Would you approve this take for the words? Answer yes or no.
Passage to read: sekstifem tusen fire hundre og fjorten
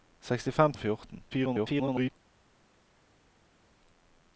no